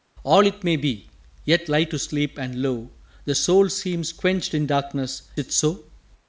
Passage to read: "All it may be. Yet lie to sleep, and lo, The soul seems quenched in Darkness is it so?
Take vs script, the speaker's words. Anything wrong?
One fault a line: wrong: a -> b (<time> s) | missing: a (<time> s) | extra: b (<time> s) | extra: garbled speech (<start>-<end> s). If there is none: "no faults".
missing: is (5.2 s)